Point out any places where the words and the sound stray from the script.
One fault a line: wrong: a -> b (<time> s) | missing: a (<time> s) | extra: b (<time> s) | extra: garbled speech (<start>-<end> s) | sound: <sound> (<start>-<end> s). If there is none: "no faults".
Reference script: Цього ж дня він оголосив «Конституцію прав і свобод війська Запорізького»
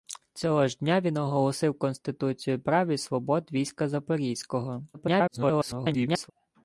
extra: garbled speech (4.9-6.3 s)